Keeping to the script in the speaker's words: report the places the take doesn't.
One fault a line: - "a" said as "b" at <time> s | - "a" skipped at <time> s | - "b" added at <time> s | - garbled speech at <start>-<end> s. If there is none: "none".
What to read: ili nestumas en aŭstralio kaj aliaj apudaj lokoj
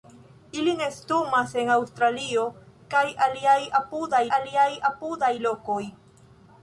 - "aliaj apudaj" added at 4.4 s